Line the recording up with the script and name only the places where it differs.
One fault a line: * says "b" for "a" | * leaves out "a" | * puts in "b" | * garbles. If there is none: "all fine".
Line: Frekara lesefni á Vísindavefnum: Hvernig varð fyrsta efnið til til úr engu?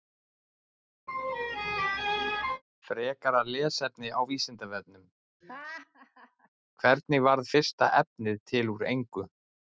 * leaves out "til"